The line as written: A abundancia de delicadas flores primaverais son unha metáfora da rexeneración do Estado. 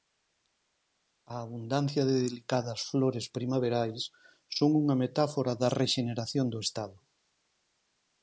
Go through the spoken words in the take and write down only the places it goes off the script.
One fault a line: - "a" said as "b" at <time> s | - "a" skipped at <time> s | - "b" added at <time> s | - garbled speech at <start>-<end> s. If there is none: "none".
none